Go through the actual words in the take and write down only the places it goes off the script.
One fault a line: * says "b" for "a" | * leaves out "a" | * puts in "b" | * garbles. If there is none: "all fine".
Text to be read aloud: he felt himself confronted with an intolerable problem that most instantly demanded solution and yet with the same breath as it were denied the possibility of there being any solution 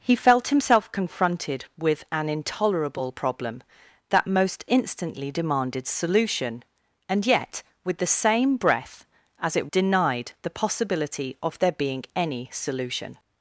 * leaves out "were"